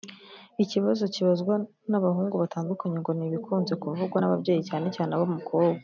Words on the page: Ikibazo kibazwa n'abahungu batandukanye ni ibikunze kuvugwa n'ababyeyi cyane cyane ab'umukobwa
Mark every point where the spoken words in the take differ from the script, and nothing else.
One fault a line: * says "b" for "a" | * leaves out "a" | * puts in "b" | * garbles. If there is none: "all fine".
* puts in "ngo"